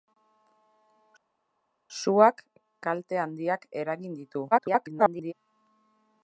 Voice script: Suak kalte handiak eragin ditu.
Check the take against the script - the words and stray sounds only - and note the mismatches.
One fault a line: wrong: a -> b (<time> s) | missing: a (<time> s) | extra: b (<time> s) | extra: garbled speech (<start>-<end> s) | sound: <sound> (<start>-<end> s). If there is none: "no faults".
extra: garbled speech (4.5-5.3 s)